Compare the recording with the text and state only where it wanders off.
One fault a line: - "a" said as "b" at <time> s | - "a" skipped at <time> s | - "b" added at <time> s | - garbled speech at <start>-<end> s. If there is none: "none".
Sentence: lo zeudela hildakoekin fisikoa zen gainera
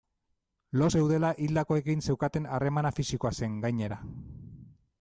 - "zeukaten harremana" added at 2.1 s